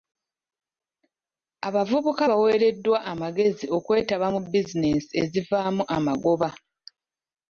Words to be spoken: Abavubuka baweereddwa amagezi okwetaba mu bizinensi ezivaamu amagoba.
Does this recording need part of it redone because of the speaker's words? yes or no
no